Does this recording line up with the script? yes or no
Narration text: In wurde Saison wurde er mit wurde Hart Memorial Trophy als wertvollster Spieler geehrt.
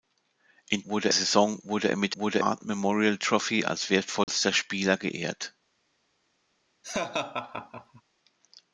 yes